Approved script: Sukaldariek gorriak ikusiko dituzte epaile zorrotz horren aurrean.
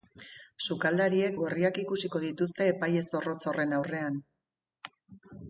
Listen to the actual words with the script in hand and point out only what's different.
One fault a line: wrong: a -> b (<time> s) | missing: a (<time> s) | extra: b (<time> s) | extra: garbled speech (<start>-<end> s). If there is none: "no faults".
no faults